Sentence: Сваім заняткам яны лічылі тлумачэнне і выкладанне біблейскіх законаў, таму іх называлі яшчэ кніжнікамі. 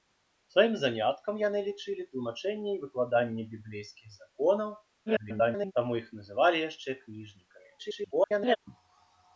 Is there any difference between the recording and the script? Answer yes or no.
yes